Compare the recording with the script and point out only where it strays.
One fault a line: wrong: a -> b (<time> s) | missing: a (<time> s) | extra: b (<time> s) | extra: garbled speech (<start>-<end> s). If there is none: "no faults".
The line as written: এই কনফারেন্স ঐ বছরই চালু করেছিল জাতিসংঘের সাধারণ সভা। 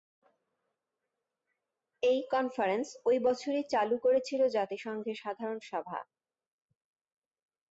no faults